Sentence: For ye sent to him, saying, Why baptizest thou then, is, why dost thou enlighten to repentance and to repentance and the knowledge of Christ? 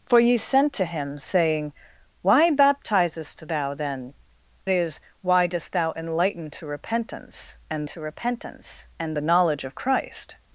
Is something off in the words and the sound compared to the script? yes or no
no